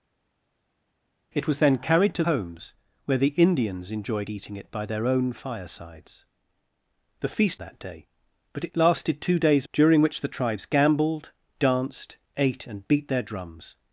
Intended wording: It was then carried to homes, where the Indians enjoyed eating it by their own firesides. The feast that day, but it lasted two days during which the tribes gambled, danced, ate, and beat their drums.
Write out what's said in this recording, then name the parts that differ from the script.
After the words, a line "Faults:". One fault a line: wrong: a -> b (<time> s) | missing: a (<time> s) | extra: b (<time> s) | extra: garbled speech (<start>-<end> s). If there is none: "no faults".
It was then carried to homes, where the Indians enjoyed eating it by their own firesides. The feast that day, but it lasted two days during which the tribes gambled, danced, ate, and beat their drums.
Faults:
no faults